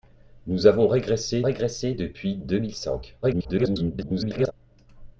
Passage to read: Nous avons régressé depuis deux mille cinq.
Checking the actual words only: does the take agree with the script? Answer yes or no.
no